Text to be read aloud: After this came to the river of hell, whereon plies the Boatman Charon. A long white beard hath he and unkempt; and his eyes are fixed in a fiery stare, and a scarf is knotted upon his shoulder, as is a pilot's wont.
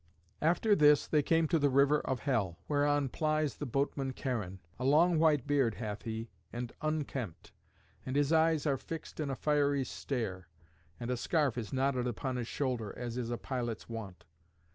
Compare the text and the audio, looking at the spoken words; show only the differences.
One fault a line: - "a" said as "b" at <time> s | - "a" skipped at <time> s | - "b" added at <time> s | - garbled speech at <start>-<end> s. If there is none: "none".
- "they" added at 1.1 s